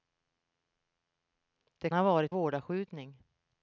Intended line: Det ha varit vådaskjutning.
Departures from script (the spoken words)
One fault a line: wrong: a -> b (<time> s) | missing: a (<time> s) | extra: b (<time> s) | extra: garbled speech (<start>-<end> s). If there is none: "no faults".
no faults